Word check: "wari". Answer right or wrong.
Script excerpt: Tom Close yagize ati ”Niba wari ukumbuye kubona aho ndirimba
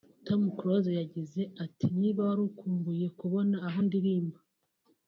right